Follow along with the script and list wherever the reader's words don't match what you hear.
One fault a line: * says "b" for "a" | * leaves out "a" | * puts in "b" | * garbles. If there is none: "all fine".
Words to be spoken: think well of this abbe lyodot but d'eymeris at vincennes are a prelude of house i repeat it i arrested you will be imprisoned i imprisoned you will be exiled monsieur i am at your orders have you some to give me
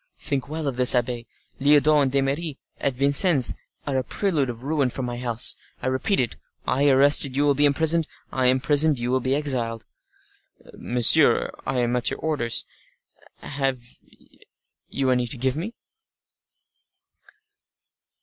* says "and" for "but"
* puts in "ruin for my"
* says "any" for "some"